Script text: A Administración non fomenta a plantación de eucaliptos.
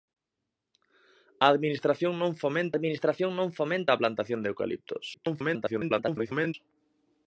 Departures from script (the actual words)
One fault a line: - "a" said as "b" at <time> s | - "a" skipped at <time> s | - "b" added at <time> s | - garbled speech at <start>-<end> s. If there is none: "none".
- "Administración non fomenta" added at 2.7 s
- garbled speech at 5.1-6.5 s